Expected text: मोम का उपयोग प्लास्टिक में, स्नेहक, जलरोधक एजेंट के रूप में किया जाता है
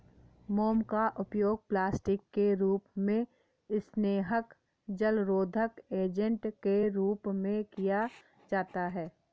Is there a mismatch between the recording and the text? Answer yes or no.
yes